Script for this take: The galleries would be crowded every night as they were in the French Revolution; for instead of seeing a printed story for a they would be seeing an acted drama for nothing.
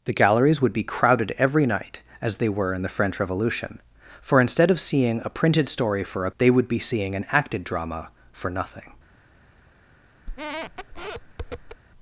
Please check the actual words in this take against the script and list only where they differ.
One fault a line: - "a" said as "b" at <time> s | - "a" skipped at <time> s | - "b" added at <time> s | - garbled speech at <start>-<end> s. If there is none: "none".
none